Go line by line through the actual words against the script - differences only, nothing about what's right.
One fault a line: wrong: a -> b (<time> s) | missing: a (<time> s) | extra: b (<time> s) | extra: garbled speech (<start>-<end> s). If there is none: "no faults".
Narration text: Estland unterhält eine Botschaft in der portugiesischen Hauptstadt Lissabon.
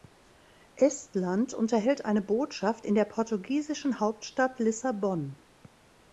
no faults